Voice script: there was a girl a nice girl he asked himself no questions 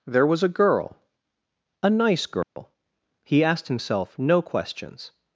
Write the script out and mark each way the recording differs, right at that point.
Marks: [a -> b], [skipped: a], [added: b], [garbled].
there was a girl a nice girl he asked himself no questions